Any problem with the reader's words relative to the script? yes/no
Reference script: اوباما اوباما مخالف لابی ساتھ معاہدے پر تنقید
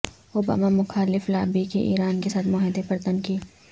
yes